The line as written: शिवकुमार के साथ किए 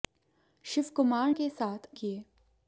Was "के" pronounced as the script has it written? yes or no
yes